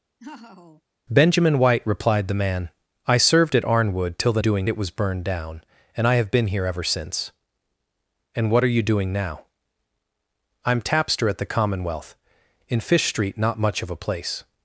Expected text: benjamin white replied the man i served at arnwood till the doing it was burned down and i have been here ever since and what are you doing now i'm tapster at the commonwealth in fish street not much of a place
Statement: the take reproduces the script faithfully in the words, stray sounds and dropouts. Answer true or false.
false